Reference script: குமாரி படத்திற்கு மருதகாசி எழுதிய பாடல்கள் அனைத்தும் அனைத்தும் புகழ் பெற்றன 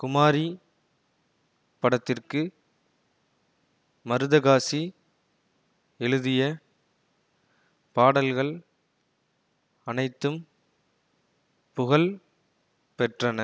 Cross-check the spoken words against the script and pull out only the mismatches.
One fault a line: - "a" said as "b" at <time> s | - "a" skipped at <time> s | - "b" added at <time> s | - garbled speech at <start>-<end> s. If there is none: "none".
- "அனைத்தும்" skipped at 10.4 s